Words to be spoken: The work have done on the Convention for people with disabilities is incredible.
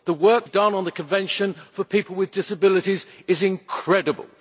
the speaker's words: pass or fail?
pass